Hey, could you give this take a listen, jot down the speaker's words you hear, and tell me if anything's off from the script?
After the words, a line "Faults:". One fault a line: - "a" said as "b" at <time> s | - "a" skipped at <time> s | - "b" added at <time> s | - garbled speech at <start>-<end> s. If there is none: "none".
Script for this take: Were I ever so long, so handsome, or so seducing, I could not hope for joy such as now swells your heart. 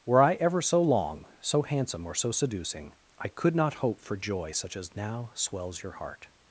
Were I ever so long, so handsome, or so seducing, I could not hope for joy such as now swells your heart.
Faults:
none